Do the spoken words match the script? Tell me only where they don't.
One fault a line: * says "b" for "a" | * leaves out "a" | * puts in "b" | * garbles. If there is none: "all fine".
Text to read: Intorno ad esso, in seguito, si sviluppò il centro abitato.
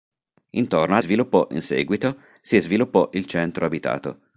* says "sviluppò" for "esso"